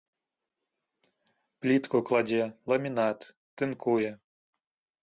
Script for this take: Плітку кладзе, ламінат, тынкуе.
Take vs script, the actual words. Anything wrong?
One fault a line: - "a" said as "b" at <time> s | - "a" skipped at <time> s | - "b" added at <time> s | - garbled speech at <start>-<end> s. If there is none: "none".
none